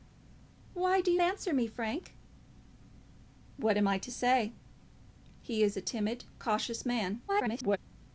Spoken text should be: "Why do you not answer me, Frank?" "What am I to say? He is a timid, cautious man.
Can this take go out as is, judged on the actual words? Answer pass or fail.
fail